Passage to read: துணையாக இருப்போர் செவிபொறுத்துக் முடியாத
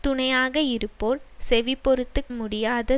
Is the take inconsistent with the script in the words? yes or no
no